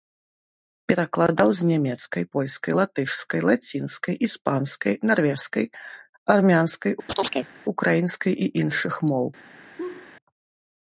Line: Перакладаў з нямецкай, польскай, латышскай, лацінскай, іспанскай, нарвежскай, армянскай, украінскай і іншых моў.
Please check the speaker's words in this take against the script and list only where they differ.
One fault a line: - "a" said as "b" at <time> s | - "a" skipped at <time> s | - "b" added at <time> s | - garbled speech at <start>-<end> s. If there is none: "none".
none